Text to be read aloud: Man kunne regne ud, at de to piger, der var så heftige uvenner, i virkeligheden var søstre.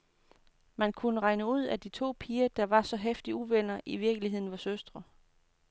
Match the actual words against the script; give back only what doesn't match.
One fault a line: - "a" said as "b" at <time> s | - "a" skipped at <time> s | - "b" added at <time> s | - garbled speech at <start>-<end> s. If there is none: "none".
none